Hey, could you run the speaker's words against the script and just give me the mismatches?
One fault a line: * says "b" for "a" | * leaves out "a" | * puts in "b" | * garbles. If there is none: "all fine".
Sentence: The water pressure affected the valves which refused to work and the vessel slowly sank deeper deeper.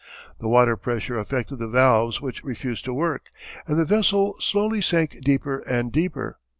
* puts in "and"